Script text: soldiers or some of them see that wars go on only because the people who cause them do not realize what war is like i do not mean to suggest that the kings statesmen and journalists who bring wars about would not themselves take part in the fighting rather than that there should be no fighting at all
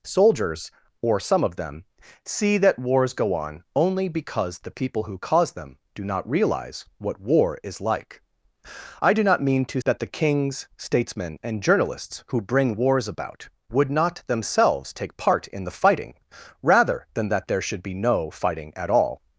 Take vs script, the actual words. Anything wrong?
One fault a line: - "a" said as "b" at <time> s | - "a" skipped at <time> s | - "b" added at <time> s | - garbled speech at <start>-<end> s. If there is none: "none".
- "suggest" skipped at 9.8 s